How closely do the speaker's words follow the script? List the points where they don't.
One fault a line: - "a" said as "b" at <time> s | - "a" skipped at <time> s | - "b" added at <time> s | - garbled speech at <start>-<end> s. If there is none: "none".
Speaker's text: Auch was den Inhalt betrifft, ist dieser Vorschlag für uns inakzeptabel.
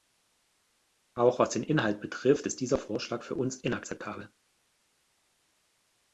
none